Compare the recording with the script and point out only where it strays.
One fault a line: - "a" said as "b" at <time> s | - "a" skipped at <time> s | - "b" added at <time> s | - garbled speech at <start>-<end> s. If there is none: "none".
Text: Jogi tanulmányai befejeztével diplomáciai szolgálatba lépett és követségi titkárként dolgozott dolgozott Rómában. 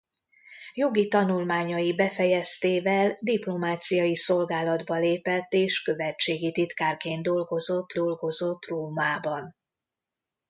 none